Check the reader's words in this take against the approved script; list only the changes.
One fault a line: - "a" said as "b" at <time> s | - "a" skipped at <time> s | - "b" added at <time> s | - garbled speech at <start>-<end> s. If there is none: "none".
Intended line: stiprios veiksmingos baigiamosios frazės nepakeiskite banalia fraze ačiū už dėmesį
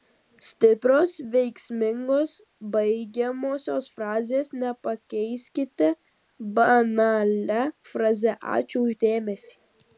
none